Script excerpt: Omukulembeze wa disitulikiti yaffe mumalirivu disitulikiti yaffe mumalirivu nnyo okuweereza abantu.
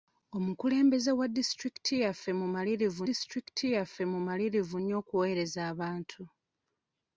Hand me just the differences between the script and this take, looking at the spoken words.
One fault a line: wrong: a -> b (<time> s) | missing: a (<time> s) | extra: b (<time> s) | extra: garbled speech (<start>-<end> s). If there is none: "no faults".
no faults